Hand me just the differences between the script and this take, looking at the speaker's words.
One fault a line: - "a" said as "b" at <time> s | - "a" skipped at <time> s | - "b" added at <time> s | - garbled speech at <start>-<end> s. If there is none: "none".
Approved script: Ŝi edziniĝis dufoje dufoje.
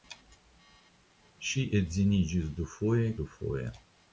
none